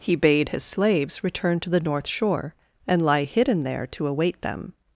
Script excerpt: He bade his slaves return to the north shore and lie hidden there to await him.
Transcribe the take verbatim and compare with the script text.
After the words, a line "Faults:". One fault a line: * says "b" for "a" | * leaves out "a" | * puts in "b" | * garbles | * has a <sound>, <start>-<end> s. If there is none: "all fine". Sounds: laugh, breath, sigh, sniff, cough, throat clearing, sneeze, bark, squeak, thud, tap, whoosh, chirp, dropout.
He bade his slaves return to the north shore and lie hidden there to await them.
Faults:
* says "them" for "him"